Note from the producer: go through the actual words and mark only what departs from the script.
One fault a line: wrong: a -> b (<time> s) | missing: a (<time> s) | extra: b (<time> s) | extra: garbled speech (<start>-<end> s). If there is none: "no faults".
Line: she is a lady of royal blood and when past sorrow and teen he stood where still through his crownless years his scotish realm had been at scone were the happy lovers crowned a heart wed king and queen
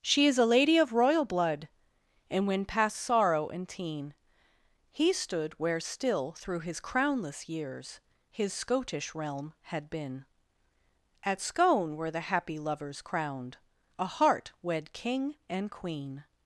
no faults